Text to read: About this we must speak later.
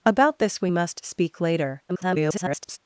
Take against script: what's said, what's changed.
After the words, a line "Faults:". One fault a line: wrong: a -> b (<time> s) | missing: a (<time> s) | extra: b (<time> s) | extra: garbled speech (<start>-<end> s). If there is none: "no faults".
About this we must speak later. [garbled]
Faults:
extra: garbled speech (1.9-2.8 s)